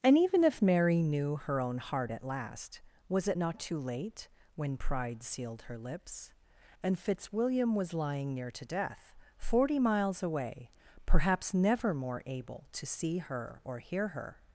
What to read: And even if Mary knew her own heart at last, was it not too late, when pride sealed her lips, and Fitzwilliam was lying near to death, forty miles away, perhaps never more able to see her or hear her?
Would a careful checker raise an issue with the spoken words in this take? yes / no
no